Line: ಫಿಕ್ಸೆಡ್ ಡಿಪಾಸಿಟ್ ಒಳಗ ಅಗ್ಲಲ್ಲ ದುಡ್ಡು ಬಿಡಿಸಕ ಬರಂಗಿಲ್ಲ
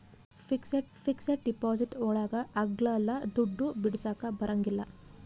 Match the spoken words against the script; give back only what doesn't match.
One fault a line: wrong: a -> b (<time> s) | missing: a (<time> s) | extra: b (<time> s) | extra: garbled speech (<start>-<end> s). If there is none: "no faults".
extra: ಫಿಕ್ಸೆಡ್ (1.0 s)